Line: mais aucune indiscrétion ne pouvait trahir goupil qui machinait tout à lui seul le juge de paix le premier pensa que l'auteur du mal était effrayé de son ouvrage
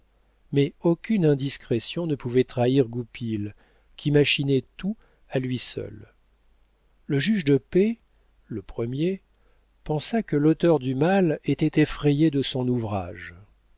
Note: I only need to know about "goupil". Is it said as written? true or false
true